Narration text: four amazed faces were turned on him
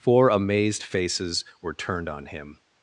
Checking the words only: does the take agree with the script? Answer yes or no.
yes